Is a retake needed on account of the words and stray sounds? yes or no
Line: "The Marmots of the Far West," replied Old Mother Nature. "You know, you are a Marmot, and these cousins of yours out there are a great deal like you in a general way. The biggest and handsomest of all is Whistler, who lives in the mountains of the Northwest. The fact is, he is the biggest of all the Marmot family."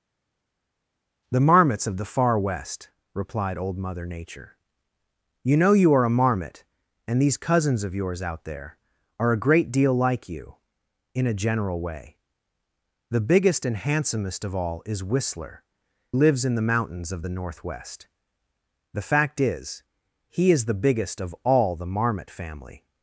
yes